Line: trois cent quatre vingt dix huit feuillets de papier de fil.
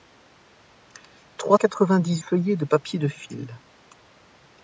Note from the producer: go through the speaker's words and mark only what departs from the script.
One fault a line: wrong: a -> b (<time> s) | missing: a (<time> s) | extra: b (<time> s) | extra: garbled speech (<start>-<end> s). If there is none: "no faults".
missing: cent (1.6 s)
missing: huit (2.2 s)